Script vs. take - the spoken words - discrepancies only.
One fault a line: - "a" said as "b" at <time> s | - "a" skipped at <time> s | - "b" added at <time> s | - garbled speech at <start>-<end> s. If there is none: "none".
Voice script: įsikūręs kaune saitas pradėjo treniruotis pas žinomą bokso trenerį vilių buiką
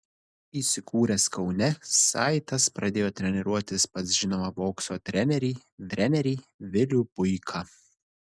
- "trenerį" added at 6.0 s